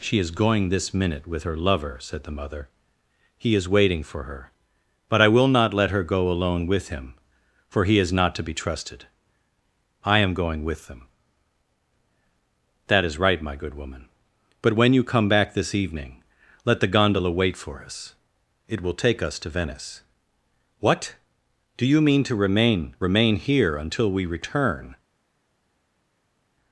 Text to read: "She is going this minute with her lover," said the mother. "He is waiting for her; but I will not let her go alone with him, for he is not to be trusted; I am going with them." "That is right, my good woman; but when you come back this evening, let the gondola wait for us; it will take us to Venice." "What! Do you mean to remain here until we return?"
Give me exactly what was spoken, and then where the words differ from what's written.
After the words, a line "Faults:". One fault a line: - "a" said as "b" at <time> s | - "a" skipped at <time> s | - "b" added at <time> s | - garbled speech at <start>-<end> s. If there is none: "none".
"She is going this minute with her lover," said the mother. "He is waiting for her; but I will not let her go alone with him, for he is not to be trusted; I am going with them." "That is right, my good woman; but when you come back this evening, let the gondola wait for us; it will take us to Venice." "What! Do you mean to remain remain here until we return?"
Faults:
- "remain" added at 23.0 s